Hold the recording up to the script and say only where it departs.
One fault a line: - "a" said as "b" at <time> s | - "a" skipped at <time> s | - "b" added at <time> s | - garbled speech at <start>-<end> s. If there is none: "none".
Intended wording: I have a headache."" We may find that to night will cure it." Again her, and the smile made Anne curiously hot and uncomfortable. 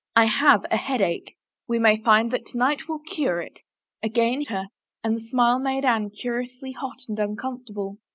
none